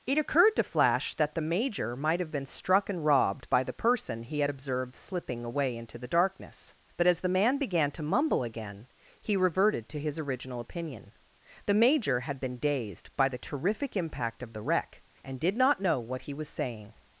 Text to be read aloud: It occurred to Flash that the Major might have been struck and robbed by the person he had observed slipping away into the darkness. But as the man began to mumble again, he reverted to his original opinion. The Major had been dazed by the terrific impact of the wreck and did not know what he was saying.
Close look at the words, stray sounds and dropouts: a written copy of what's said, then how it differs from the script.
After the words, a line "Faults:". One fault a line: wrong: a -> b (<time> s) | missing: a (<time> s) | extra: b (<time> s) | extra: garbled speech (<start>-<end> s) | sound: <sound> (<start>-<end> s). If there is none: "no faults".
It occurred to Flash that the Major might have been struck and robbed by the person he had observed slipping away into the darkness. But as the man began to mumble again, he reverted to his original opinion. The Major had been dazed by the terrific impact of the wreck and did not know what he was saying.
Faults:
no faults